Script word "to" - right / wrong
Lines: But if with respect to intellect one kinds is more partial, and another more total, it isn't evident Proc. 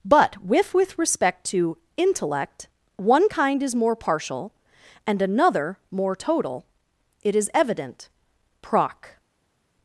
right